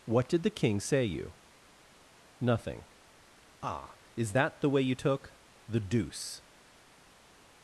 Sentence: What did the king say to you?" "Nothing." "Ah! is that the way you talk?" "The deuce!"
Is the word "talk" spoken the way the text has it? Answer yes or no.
no